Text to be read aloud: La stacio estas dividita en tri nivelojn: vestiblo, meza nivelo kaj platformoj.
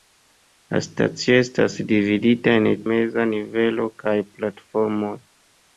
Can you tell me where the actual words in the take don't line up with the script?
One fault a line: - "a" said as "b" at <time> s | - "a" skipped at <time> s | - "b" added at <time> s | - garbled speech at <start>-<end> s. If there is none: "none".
- "tri nivelojn vestiblo" skipped at 2.6 s